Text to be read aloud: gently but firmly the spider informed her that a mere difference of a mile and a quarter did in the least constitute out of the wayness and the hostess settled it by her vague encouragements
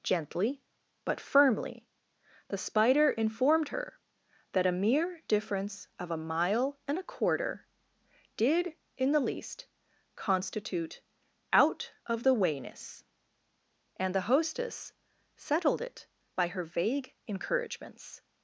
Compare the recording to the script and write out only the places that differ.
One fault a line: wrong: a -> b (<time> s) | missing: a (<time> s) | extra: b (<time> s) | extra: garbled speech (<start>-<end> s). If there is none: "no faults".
no faults